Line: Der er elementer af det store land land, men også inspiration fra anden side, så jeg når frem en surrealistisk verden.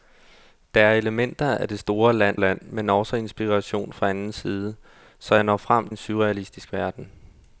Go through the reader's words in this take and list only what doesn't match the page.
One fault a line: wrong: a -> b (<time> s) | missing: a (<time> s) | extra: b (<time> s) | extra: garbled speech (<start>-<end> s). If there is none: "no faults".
no faults